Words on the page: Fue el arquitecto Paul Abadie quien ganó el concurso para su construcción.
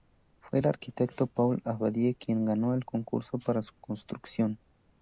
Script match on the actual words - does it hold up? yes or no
yes